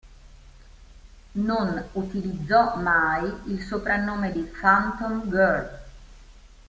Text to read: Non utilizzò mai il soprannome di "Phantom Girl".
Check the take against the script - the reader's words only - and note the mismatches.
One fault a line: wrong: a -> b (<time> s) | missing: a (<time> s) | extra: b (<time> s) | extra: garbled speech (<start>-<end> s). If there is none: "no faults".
no faults